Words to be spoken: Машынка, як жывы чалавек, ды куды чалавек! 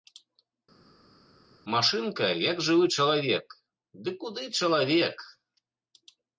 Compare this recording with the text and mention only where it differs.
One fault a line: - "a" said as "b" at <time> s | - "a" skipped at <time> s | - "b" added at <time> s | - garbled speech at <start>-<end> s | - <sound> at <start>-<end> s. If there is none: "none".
none